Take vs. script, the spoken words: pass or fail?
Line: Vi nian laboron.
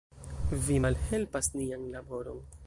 fail